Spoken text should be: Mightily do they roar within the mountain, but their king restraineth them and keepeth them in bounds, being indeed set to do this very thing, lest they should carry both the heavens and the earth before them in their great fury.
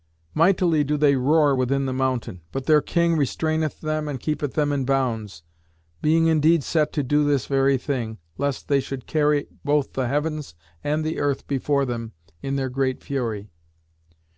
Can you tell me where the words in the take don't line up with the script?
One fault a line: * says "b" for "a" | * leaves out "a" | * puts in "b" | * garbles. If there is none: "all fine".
all fine